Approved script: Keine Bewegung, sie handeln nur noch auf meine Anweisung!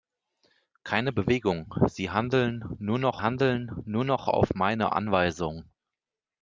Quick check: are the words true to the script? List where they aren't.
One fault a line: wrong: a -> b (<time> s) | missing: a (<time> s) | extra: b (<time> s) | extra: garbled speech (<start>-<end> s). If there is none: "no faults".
extra: handeln nur noch (3.2 s)